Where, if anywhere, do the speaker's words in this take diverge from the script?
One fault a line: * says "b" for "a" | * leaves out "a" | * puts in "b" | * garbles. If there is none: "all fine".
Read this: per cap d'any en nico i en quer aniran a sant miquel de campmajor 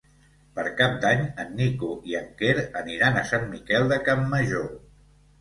all fine